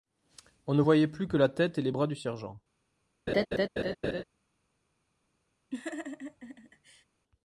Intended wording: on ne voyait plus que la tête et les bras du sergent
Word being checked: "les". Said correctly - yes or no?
yes